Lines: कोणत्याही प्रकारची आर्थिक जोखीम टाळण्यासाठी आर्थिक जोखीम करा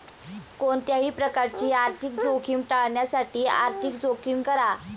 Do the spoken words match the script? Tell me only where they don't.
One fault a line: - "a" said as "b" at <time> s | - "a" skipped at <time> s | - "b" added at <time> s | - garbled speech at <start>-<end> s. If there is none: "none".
none